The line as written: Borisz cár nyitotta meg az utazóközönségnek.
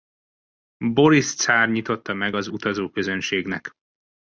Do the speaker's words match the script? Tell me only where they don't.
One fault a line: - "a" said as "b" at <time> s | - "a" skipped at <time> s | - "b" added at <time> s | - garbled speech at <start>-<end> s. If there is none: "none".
none